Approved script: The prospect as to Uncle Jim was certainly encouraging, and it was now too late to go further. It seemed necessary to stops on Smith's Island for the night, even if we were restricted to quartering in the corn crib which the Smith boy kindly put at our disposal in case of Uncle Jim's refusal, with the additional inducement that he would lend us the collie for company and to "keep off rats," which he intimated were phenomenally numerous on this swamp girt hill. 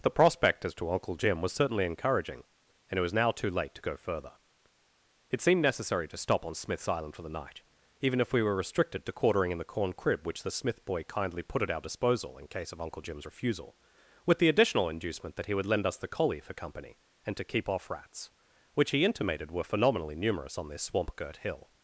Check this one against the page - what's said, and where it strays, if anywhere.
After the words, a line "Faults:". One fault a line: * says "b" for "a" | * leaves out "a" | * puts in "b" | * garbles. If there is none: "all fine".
The prospect as to Uncle Jim was certainly encouraging, and it was now too late to go further. It seemed necessary to stop on Smith's Island for the night, even if we were restricted to quartering in the corn crib which the Smith boy kindly put at our disposal in case of Uncle Jim's refusal, with the additional inducement that he would lend us the collie for company and to "keep off rats," which he intimated were phenomenally numerous on this swamp girt hill.
Faults:
* says "stop" for "stops"